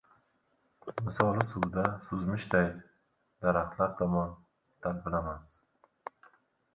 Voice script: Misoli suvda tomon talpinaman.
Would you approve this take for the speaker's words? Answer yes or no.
no